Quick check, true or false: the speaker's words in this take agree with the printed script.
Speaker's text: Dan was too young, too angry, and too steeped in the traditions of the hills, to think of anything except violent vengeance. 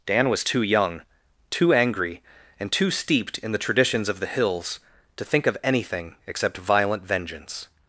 true